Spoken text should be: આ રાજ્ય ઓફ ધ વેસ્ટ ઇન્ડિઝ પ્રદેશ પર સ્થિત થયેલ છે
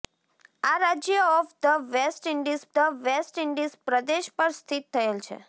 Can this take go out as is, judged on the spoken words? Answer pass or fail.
fail